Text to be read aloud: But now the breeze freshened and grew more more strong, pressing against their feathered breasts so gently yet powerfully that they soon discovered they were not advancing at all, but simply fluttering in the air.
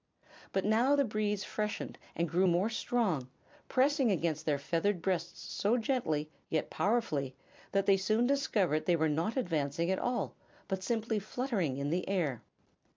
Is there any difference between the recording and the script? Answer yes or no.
yes